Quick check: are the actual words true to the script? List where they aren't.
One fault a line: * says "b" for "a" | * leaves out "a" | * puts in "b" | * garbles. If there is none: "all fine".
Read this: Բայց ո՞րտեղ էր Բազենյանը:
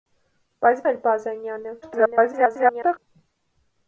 * leaves out "ո՞րտեղ"
* garbles